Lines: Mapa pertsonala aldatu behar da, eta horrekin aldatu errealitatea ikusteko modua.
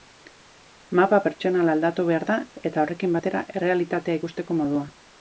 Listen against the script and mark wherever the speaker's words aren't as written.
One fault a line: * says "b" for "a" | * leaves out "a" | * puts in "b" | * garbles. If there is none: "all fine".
* says "batera" for "aldatu"